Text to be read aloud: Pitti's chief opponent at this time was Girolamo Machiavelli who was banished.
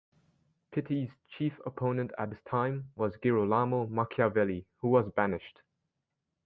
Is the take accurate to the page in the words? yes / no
yes